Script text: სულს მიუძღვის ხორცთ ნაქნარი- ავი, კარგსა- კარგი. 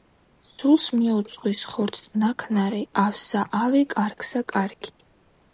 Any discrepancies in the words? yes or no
yes